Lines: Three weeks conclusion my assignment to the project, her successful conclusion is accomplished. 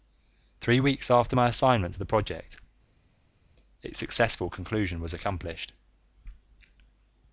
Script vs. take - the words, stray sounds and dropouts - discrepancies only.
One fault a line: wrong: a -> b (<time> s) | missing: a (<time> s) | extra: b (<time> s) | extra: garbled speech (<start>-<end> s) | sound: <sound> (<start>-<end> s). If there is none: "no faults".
wrong: conclusion -> after (1.1 s)
wrong: her -> its (3.8 s)
wrong: is -> was (5.0 s)